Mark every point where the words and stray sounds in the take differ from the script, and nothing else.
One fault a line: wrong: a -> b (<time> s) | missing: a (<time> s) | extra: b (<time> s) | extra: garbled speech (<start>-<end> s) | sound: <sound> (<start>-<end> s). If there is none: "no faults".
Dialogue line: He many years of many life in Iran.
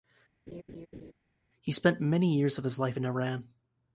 sound: laugh (0.5-1.1 s)
extra: spent (1.7 s)
wrong: many -> his (2.6 s)